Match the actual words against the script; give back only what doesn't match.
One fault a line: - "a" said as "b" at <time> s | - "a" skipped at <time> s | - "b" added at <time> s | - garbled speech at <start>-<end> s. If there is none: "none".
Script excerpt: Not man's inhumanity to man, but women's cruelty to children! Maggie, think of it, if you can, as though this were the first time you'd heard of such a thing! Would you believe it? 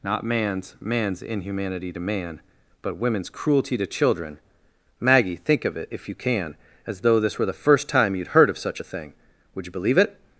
- "man's" added at 0.8 s